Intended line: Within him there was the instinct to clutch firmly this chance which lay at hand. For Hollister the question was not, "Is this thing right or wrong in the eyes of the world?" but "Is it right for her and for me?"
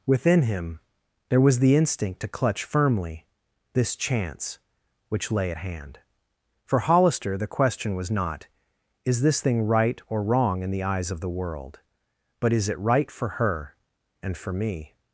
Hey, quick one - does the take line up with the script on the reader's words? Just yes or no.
yes